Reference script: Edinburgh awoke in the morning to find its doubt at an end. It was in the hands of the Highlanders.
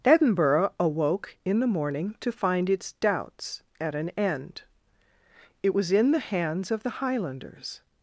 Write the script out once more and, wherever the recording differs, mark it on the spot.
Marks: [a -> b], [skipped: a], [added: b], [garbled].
Edinburgh awoke in the morning to find its [doubt -> doubts] at an end. It was in the hands of the Highlanders.